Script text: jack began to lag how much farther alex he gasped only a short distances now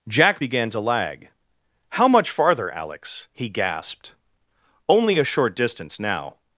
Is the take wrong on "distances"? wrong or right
wrong